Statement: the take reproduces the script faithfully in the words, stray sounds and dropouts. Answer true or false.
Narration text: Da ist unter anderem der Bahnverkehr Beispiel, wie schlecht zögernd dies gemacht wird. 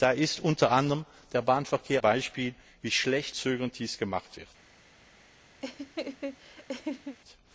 false